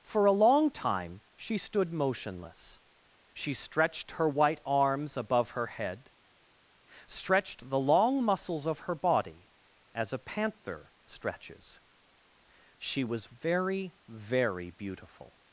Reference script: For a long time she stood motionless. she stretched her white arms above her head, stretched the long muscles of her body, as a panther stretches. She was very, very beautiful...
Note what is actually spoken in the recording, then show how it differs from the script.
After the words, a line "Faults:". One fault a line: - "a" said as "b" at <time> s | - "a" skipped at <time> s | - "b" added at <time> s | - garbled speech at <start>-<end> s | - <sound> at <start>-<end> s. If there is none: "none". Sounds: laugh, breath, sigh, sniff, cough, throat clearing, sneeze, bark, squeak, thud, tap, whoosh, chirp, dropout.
For a long time she stood motionless. she stretched her white arms above her head, stretched the long muscles of her body, as a panther stretches. She was very, very beautiful...
Faults:
none